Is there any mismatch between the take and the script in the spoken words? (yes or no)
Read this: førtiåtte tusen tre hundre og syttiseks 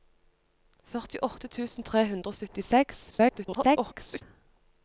yes